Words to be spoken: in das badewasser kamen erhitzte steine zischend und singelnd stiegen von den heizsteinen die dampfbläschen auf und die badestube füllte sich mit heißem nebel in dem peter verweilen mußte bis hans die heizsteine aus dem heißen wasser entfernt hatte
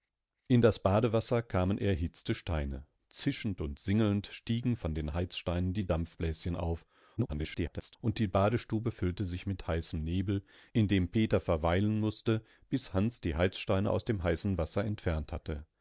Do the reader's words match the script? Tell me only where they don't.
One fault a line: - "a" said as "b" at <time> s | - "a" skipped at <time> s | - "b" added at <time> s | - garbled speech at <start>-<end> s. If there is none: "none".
- garbled speech at 7.2-8.0 s